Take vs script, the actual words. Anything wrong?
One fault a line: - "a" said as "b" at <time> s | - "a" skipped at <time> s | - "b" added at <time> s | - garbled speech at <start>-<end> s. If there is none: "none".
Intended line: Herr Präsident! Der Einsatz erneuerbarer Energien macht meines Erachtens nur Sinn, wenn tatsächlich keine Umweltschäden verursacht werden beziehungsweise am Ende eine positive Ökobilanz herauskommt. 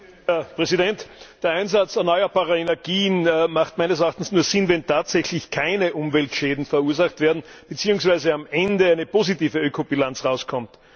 none